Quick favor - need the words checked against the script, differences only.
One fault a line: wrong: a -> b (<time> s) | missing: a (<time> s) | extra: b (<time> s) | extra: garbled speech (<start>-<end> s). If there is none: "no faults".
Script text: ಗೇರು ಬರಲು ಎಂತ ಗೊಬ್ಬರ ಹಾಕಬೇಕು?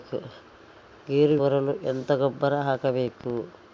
no faults